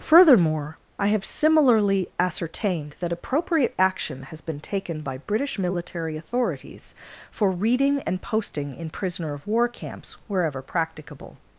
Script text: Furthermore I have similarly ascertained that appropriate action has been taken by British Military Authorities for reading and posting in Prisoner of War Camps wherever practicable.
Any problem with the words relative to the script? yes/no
no